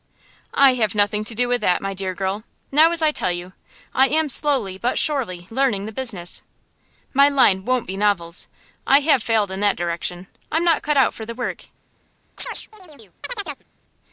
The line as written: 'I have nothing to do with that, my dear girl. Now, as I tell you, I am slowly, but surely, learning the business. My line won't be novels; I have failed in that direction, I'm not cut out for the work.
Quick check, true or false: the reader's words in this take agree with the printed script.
true